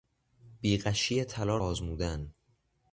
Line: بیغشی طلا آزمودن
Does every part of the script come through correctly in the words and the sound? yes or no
yes